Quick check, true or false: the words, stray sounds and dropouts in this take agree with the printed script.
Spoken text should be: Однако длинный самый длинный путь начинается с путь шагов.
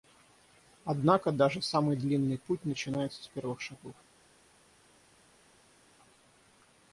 false